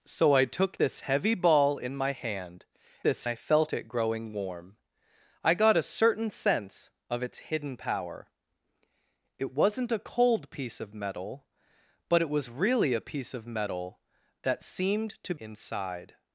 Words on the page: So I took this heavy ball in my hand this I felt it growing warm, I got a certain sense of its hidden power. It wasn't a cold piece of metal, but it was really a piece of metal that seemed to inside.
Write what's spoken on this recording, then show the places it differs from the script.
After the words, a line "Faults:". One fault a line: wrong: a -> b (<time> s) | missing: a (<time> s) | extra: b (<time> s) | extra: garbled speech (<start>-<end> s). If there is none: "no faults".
So I took this heavy ball in my hand this I felt it growing warm, I got a certain sense of its hidden power. It wasn't a cold piece of metal, but it was really a piece of metal that seemed to inside.
Faults:
no faults